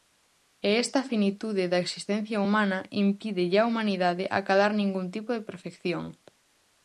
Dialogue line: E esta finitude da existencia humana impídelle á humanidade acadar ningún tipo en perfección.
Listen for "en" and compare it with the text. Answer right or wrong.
wrong